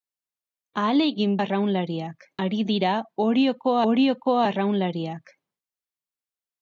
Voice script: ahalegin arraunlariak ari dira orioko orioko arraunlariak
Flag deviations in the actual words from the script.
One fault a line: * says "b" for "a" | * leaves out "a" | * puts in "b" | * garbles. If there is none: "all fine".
all fine